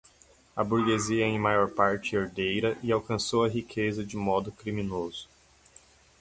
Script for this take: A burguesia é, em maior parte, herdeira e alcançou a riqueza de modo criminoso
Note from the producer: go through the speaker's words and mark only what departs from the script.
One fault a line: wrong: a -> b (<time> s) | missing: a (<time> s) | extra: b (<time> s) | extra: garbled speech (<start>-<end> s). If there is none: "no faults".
no faults